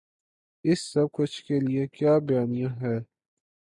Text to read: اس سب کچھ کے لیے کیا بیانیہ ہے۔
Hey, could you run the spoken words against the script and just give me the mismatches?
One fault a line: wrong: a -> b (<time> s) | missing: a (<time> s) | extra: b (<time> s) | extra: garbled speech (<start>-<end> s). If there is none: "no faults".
no faults